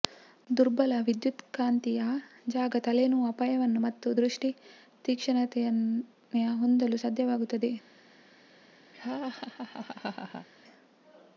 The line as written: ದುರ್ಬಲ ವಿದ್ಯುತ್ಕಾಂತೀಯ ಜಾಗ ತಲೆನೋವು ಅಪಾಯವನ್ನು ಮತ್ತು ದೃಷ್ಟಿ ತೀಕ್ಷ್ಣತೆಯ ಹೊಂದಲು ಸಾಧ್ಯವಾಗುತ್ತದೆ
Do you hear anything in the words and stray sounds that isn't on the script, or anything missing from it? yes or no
yes